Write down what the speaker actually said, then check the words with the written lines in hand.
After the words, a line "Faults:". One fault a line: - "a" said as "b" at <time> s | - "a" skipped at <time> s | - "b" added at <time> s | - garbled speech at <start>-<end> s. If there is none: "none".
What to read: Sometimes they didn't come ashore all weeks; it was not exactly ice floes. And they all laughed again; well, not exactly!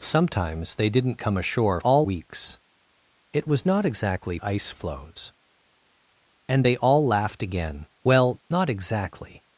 Sometimes they didn't come ashore all weeks; it was not exactly ice floes. And they all laughed again; well, not exactly!
Faults:
none